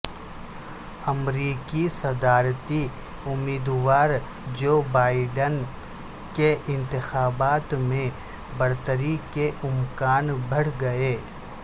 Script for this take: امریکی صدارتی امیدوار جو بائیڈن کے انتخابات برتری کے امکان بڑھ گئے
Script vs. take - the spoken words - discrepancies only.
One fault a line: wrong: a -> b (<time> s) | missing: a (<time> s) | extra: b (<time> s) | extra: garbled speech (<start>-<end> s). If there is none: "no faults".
extra: میں (7.8 s)